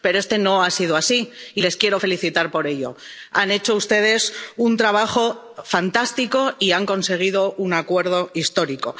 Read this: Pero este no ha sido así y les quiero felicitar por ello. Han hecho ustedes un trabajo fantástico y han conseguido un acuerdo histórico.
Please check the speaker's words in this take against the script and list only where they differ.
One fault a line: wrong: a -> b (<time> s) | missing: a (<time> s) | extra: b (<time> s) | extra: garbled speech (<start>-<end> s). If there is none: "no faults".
no faults